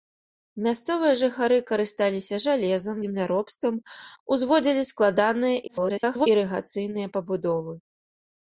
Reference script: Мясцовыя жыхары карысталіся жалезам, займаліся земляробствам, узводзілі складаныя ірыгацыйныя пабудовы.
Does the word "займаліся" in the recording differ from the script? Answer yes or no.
yes